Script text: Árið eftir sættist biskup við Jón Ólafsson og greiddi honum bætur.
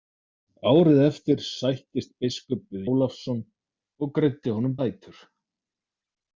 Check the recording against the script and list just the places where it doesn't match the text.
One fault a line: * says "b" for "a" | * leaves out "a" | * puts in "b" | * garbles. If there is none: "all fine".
* leaves out "Jón"